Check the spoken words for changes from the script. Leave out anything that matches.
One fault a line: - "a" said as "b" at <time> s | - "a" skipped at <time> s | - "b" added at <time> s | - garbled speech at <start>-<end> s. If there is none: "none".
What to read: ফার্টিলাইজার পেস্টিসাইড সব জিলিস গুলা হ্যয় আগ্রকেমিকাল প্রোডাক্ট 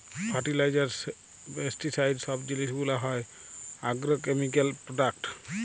none